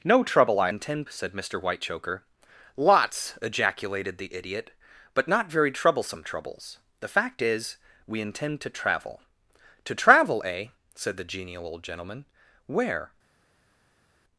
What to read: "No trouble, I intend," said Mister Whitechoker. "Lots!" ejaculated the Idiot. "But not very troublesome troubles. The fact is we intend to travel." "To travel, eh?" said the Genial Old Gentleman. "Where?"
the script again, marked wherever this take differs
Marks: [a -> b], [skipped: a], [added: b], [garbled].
"No trouble, I intend," said Mister Whitechoker. "Lots!" ejaculated the Idiot. "But not very troublesome troubles. The fact is we intend to travel." "To travel, eh?" said the Genial Old Gentleman. "Where?"